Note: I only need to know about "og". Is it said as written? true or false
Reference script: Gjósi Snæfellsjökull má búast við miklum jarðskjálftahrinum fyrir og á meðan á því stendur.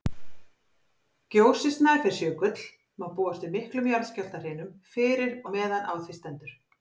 false